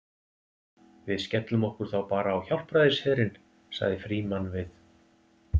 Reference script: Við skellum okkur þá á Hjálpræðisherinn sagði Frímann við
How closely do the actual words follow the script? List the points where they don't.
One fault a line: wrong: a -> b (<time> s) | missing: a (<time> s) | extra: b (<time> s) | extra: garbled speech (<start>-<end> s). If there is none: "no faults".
extra: bara (2.1 s)